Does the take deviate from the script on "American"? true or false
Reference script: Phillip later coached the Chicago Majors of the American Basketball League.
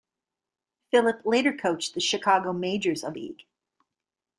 true